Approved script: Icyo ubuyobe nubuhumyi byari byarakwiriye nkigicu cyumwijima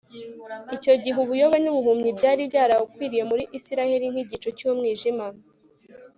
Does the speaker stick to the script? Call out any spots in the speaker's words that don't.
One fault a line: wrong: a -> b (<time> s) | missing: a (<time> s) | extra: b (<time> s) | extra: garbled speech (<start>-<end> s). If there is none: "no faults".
extra: gihe (1.0 s)
extra: muri Isirayeli (3.3 s)